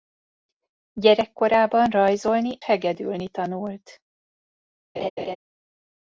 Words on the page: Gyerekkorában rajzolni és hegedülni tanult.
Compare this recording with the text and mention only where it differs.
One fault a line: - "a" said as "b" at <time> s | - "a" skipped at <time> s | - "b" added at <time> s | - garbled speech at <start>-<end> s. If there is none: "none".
- "és" skipped at 2.6 s